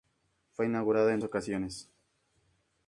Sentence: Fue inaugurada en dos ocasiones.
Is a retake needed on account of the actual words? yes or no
yes